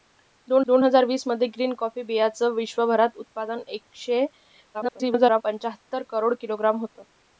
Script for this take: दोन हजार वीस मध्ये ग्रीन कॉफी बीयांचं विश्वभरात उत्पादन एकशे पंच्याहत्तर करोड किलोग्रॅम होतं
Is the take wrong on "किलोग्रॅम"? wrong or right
right